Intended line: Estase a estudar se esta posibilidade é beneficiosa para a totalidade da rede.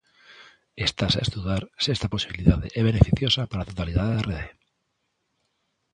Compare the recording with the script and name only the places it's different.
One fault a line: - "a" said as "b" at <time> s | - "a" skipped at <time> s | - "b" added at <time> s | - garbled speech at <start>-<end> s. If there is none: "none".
none